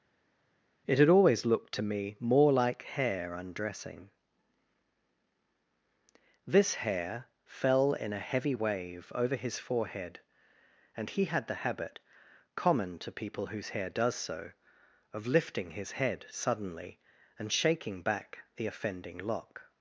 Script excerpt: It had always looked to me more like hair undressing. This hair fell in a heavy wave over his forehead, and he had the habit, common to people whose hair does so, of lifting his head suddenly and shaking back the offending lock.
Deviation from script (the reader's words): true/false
false